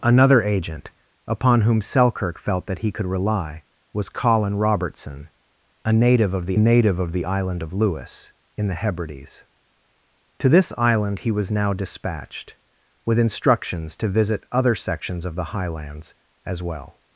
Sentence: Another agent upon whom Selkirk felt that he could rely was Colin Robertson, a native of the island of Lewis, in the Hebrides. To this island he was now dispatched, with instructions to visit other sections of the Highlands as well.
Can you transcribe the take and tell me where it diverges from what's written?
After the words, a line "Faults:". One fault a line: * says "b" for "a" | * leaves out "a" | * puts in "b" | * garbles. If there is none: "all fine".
Another agent upon whom Selkirk felt that he could rely was Colin Robertson, a native of the native of the island of Lewis, in the Hebrides. To this island he was now dispatched, with instructions to visit other sections of the Highlands as well.
Faults:
* puts in "native of the"